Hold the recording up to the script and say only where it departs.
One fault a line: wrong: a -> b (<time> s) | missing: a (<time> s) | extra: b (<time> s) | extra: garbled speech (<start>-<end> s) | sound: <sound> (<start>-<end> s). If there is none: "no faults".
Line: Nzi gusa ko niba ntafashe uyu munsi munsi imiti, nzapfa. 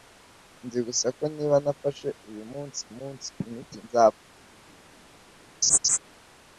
sound: laugh (5.6-6.0 s)